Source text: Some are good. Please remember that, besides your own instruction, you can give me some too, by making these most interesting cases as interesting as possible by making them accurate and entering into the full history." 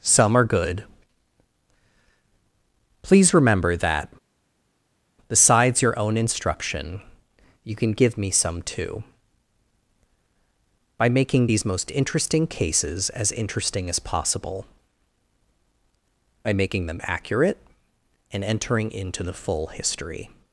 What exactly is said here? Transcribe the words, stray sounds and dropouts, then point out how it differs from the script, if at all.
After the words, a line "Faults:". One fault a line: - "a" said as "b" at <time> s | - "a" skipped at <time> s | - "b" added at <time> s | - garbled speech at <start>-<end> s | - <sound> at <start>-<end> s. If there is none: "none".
Some are good. Please remember that, besides your own instruction, you can give me some too, by making these most interesting cases as interesting as possible by making them accurate and entering into the full history."
Faults:
none